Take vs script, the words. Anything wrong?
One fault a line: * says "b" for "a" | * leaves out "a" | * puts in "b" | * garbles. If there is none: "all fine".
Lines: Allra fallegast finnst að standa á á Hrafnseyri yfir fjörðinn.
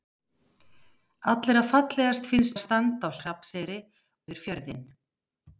all fine